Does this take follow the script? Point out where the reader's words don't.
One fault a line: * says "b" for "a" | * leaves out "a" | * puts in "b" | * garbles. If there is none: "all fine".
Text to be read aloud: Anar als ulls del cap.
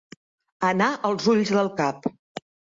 all fine